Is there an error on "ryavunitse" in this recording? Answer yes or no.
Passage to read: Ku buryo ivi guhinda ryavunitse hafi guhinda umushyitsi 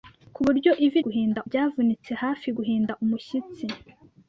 no